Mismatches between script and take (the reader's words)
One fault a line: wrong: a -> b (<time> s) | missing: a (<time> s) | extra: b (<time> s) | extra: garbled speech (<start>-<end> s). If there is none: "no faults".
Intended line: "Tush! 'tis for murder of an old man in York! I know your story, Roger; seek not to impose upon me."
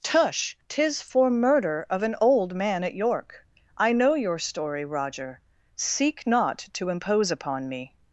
wrong: in -> at (2.8 s)